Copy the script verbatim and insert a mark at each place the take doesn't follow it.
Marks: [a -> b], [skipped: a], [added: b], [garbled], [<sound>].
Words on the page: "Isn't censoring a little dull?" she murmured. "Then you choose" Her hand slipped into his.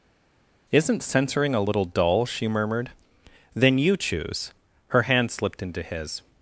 "Isn't censoring a little dull?" she murmured. "Then you choose" Her hand slipped into his.